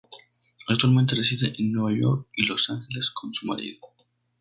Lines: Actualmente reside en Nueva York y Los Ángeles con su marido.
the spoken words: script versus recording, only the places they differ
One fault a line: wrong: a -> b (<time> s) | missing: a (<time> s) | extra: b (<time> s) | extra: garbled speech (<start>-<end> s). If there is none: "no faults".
no faults